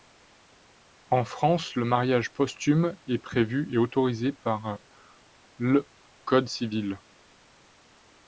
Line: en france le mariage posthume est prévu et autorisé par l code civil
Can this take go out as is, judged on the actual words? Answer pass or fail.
pass